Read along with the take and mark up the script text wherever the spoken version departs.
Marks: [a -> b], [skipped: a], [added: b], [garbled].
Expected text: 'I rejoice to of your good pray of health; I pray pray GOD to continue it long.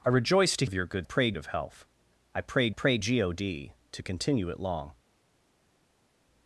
'I rejoice to of your good pray of health; I pray pray GOD to continue it long.